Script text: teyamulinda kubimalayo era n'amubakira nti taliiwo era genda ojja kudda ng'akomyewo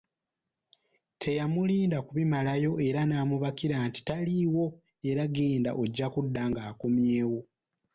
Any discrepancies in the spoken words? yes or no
no